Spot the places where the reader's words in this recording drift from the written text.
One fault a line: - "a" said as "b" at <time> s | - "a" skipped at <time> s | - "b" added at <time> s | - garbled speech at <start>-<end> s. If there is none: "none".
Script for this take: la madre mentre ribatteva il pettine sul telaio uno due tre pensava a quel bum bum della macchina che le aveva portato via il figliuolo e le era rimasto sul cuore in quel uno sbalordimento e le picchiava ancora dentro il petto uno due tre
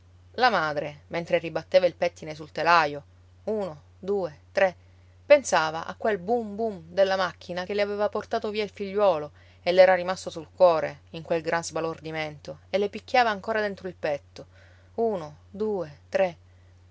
- "uno" said as "gran" at 11.4 s